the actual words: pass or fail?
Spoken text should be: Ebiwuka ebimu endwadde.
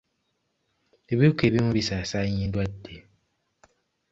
fail